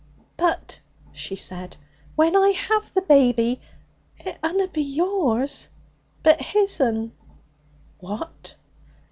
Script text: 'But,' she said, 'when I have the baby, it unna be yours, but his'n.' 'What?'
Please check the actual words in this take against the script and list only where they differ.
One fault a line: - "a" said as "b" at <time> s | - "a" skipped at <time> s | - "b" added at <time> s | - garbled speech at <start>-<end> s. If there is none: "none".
none